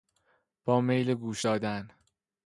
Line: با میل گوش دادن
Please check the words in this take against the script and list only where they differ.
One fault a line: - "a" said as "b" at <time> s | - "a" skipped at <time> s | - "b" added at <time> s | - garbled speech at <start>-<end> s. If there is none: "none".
none